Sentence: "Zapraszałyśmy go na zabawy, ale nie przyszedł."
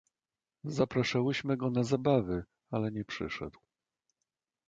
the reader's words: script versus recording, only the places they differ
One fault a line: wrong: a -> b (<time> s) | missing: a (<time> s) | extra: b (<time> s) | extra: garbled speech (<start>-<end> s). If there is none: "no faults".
no faults